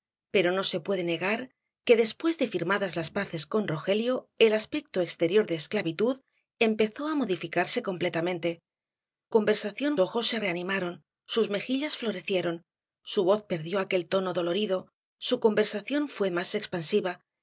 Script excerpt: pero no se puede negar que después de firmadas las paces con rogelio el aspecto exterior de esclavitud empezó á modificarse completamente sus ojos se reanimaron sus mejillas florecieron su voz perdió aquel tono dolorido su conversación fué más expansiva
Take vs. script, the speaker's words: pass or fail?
fail